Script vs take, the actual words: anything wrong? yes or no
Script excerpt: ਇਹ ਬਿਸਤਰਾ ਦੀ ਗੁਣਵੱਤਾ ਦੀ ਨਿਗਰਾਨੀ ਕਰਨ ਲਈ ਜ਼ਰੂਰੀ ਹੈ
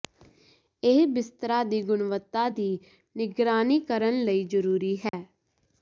no